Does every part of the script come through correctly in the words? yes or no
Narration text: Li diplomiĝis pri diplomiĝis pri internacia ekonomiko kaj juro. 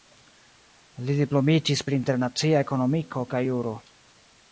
no